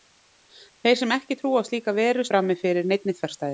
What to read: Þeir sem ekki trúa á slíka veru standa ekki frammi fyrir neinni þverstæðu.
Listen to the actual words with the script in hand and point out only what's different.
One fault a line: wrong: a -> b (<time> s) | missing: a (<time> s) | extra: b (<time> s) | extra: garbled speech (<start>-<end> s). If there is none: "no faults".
missing: standa ekki (2.3 s)